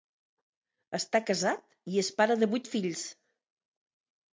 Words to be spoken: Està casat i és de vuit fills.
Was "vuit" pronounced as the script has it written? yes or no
yes